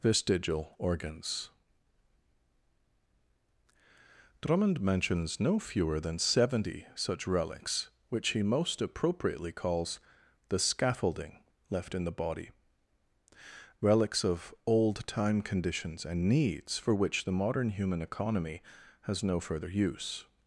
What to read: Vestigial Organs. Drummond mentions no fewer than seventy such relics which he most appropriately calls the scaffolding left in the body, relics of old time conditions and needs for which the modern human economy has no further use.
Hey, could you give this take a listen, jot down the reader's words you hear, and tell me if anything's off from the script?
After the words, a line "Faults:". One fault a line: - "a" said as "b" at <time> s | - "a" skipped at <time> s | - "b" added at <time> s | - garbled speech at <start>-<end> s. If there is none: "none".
Vestigial Organs. Drummond mentions no fewer than seventy such relics which he most appropriately calls the scaffolding left in the body, relics of old time conditions and needs for which the modern human economy has no further use.
Faults:
none